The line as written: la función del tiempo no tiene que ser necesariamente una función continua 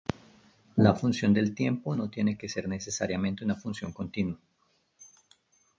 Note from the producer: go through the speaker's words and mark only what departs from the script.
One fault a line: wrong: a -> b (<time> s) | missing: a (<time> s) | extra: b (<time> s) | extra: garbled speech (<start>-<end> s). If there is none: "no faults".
no faults